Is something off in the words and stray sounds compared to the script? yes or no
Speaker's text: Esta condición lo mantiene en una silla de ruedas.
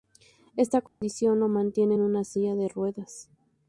yes